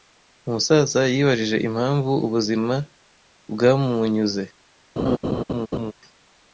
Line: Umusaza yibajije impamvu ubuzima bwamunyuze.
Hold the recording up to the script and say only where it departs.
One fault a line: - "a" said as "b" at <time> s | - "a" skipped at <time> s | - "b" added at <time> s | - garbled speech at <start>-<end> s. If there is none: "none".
none